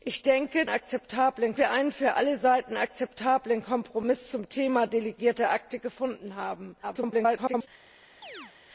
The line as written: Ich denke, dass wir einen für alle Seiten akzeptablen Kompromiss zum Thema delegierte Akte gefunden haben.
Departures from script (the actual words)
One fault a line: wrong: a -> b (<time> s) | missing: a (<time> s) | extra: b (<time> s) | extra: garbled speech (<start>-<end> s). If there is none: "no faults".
wrong: dass -> akzeptablen (0.7 s)
extra: garbled speech (6.8-7.7 s)